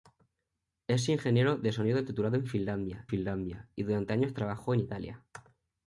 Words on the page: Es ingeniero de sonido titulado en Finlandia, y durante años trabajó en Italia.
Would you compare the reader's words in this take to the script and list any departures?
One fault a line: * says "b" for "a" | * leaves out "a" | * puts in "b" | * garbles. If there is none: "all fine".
* puts in "Finlandia"